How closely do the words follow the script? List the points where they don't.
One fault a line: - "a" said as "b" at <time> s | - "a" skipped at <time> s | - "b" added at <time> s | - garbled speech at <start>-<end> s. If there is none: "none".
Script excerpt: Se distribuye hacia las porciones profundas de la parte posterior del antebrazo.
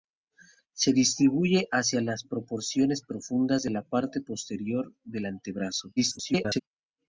- garbled speech at 6.0-6.6 s